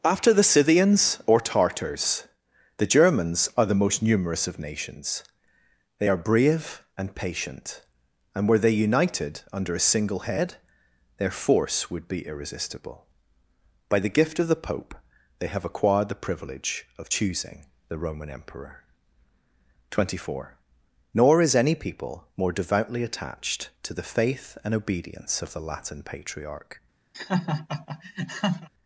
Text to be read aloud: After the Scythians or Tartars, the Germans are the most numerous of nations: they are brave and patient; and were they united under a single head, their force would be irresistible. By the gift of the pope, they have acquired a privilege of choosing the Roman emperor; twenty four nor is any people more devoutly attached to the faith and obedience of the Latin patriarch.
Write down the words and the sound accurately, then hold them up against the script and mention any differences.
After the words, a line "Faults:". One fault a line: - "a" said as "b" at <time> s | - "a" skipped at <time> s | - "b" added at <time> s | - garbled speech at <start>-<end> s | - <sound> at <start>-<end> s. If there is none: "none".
After the Scythians or Tartars, the Germans are the most numerous of nations: they are brave and patient; and were they united under a single head, their force would be irresistible. By the gift of the pope, they have acquired the privilege of choosing the Roman emperor; twenty four nor is any people more devoutly attached to the faith and obedience of the Latin patriarch.
Faults:
- "a" said as "the" at 16.1 s
- laugh at 27.1-28.7 s